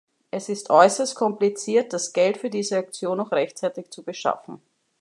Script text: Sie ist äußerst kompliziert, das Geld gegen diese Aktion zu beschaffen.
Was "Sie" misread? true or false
true